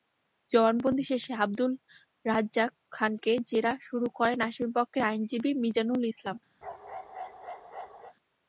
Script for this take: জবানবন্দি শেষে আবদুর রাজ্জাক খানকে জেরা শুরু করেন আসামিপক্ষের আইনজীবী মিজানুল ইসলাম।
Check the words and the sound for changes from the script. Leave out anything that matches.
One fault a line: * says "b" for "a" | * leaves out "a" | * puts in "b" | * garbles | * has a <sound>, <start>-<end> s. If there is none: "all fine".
* has a bark, 6.6-8.1 s